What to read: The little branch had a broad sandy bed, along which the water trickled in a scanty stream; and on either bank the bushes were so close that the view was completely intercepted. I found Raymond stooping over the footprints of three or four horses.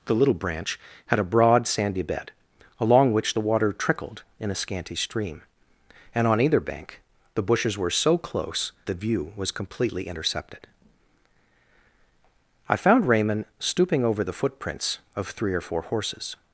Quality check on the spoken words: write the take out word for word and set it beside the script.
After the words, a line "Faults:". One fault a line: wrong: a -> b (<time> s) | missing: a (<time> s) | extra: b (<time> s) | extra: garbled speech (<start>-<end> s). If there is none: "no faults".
The little branch had a broad sandy bed, along which the water trickled in a scanty stream; and on either bank the bushes were so close the view was completely intercepted. I found Raymond stooping over the footprints of three or four horses.
Faults:
missing: that (8.7 s)